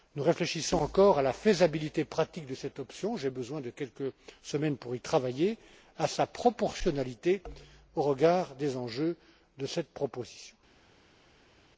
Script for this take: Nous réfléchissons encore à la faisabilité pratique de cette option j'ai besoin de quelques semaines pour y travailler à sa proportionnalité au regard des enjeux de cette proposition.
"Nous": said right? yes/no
yes